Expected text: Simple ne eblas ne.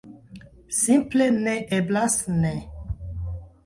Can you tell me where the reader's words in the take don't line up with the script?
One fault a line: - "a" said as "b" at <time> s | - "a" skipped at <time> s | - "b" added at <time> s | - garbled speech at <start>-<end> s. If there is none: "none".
none